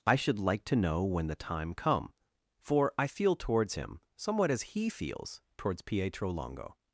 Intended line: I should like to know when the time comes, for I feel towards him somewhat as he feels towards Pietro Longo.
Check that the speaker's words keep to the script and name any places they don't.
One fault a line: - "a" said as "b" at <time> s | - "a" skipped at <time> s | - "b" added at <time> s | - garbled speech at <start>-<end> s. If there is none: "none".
- "comes" said as "come" at 1.7 s